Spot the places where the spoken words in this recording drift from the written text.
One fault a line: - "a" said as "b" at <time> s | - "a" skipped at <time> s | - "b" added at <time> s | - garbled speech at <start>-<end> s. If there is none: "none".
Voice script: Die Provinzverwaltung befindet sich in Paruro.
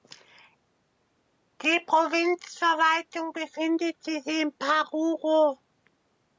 none